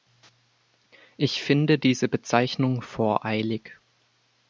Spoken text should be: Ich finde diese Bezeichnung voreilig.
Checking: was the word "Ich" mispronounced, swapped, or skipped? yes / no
no